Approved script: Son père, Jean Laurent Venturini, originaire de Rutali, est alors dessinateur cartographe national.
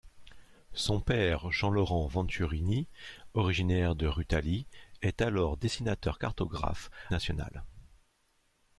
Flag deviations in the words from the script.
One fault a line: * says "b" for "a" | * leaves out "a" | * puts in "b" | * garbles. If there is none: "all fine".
all fine